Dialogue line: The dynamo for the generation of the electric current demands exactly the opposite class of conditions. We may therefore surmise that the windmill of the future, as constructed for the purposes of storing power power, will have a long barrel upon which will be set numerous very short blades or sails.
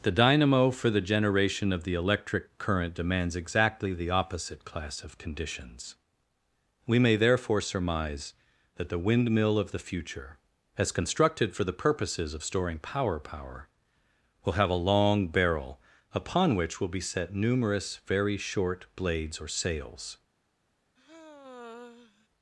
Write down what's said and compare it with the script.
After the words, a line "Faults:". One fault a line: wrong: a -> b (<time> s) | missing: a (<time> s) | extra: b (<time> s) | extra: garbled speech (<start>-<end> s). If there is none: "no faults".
The dynamo for the generation of the electric current demands exactly the opposite class of conditions. We may therefore surmise that the windmill of the future, as constructed for the purposes of storing power power, will have a long barrel upon which will be set numerous very short blades or sails.
Faults:
no faults